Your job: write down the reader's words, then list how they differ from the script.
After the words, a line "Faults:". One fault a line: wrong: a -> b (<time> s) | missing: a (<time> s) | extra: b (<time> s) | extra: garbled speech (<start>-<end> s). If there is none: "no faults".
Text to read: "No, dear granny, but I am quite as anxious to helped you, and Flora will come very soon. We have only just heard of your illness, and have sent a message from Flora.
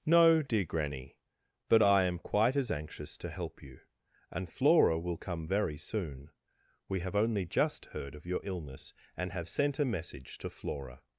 "No, dear granny, but I am quite as anxious to help you, and Flora will come very soon. We have only just heard of your illness, and have sent a message to Flora.
Faults:
wrong: helped -> help (3.3 s)
wrong: from -> to (10.4 s)